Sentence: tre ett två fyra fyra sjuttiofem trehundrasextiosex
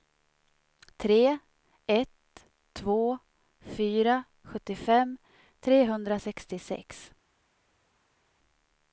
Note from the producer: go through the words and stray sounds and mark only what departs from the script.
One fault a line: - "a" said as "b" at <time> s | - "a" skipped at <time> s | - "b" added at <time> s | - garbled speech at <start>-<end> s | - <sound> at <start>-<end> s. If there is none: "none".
- "fyra" skipped at 4.2 s